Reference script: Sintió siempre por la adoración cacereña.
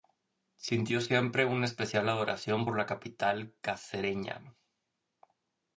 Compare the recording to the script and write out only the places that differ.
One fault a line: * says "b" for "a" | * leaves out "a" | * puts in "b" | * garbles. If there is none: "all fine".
* puts in "una especial adoración"
* says "capital" for "adoración"